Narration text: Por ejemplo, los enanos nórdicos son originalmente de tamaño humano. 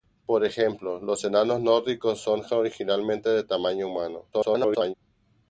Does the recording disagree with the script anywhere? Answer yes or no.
yes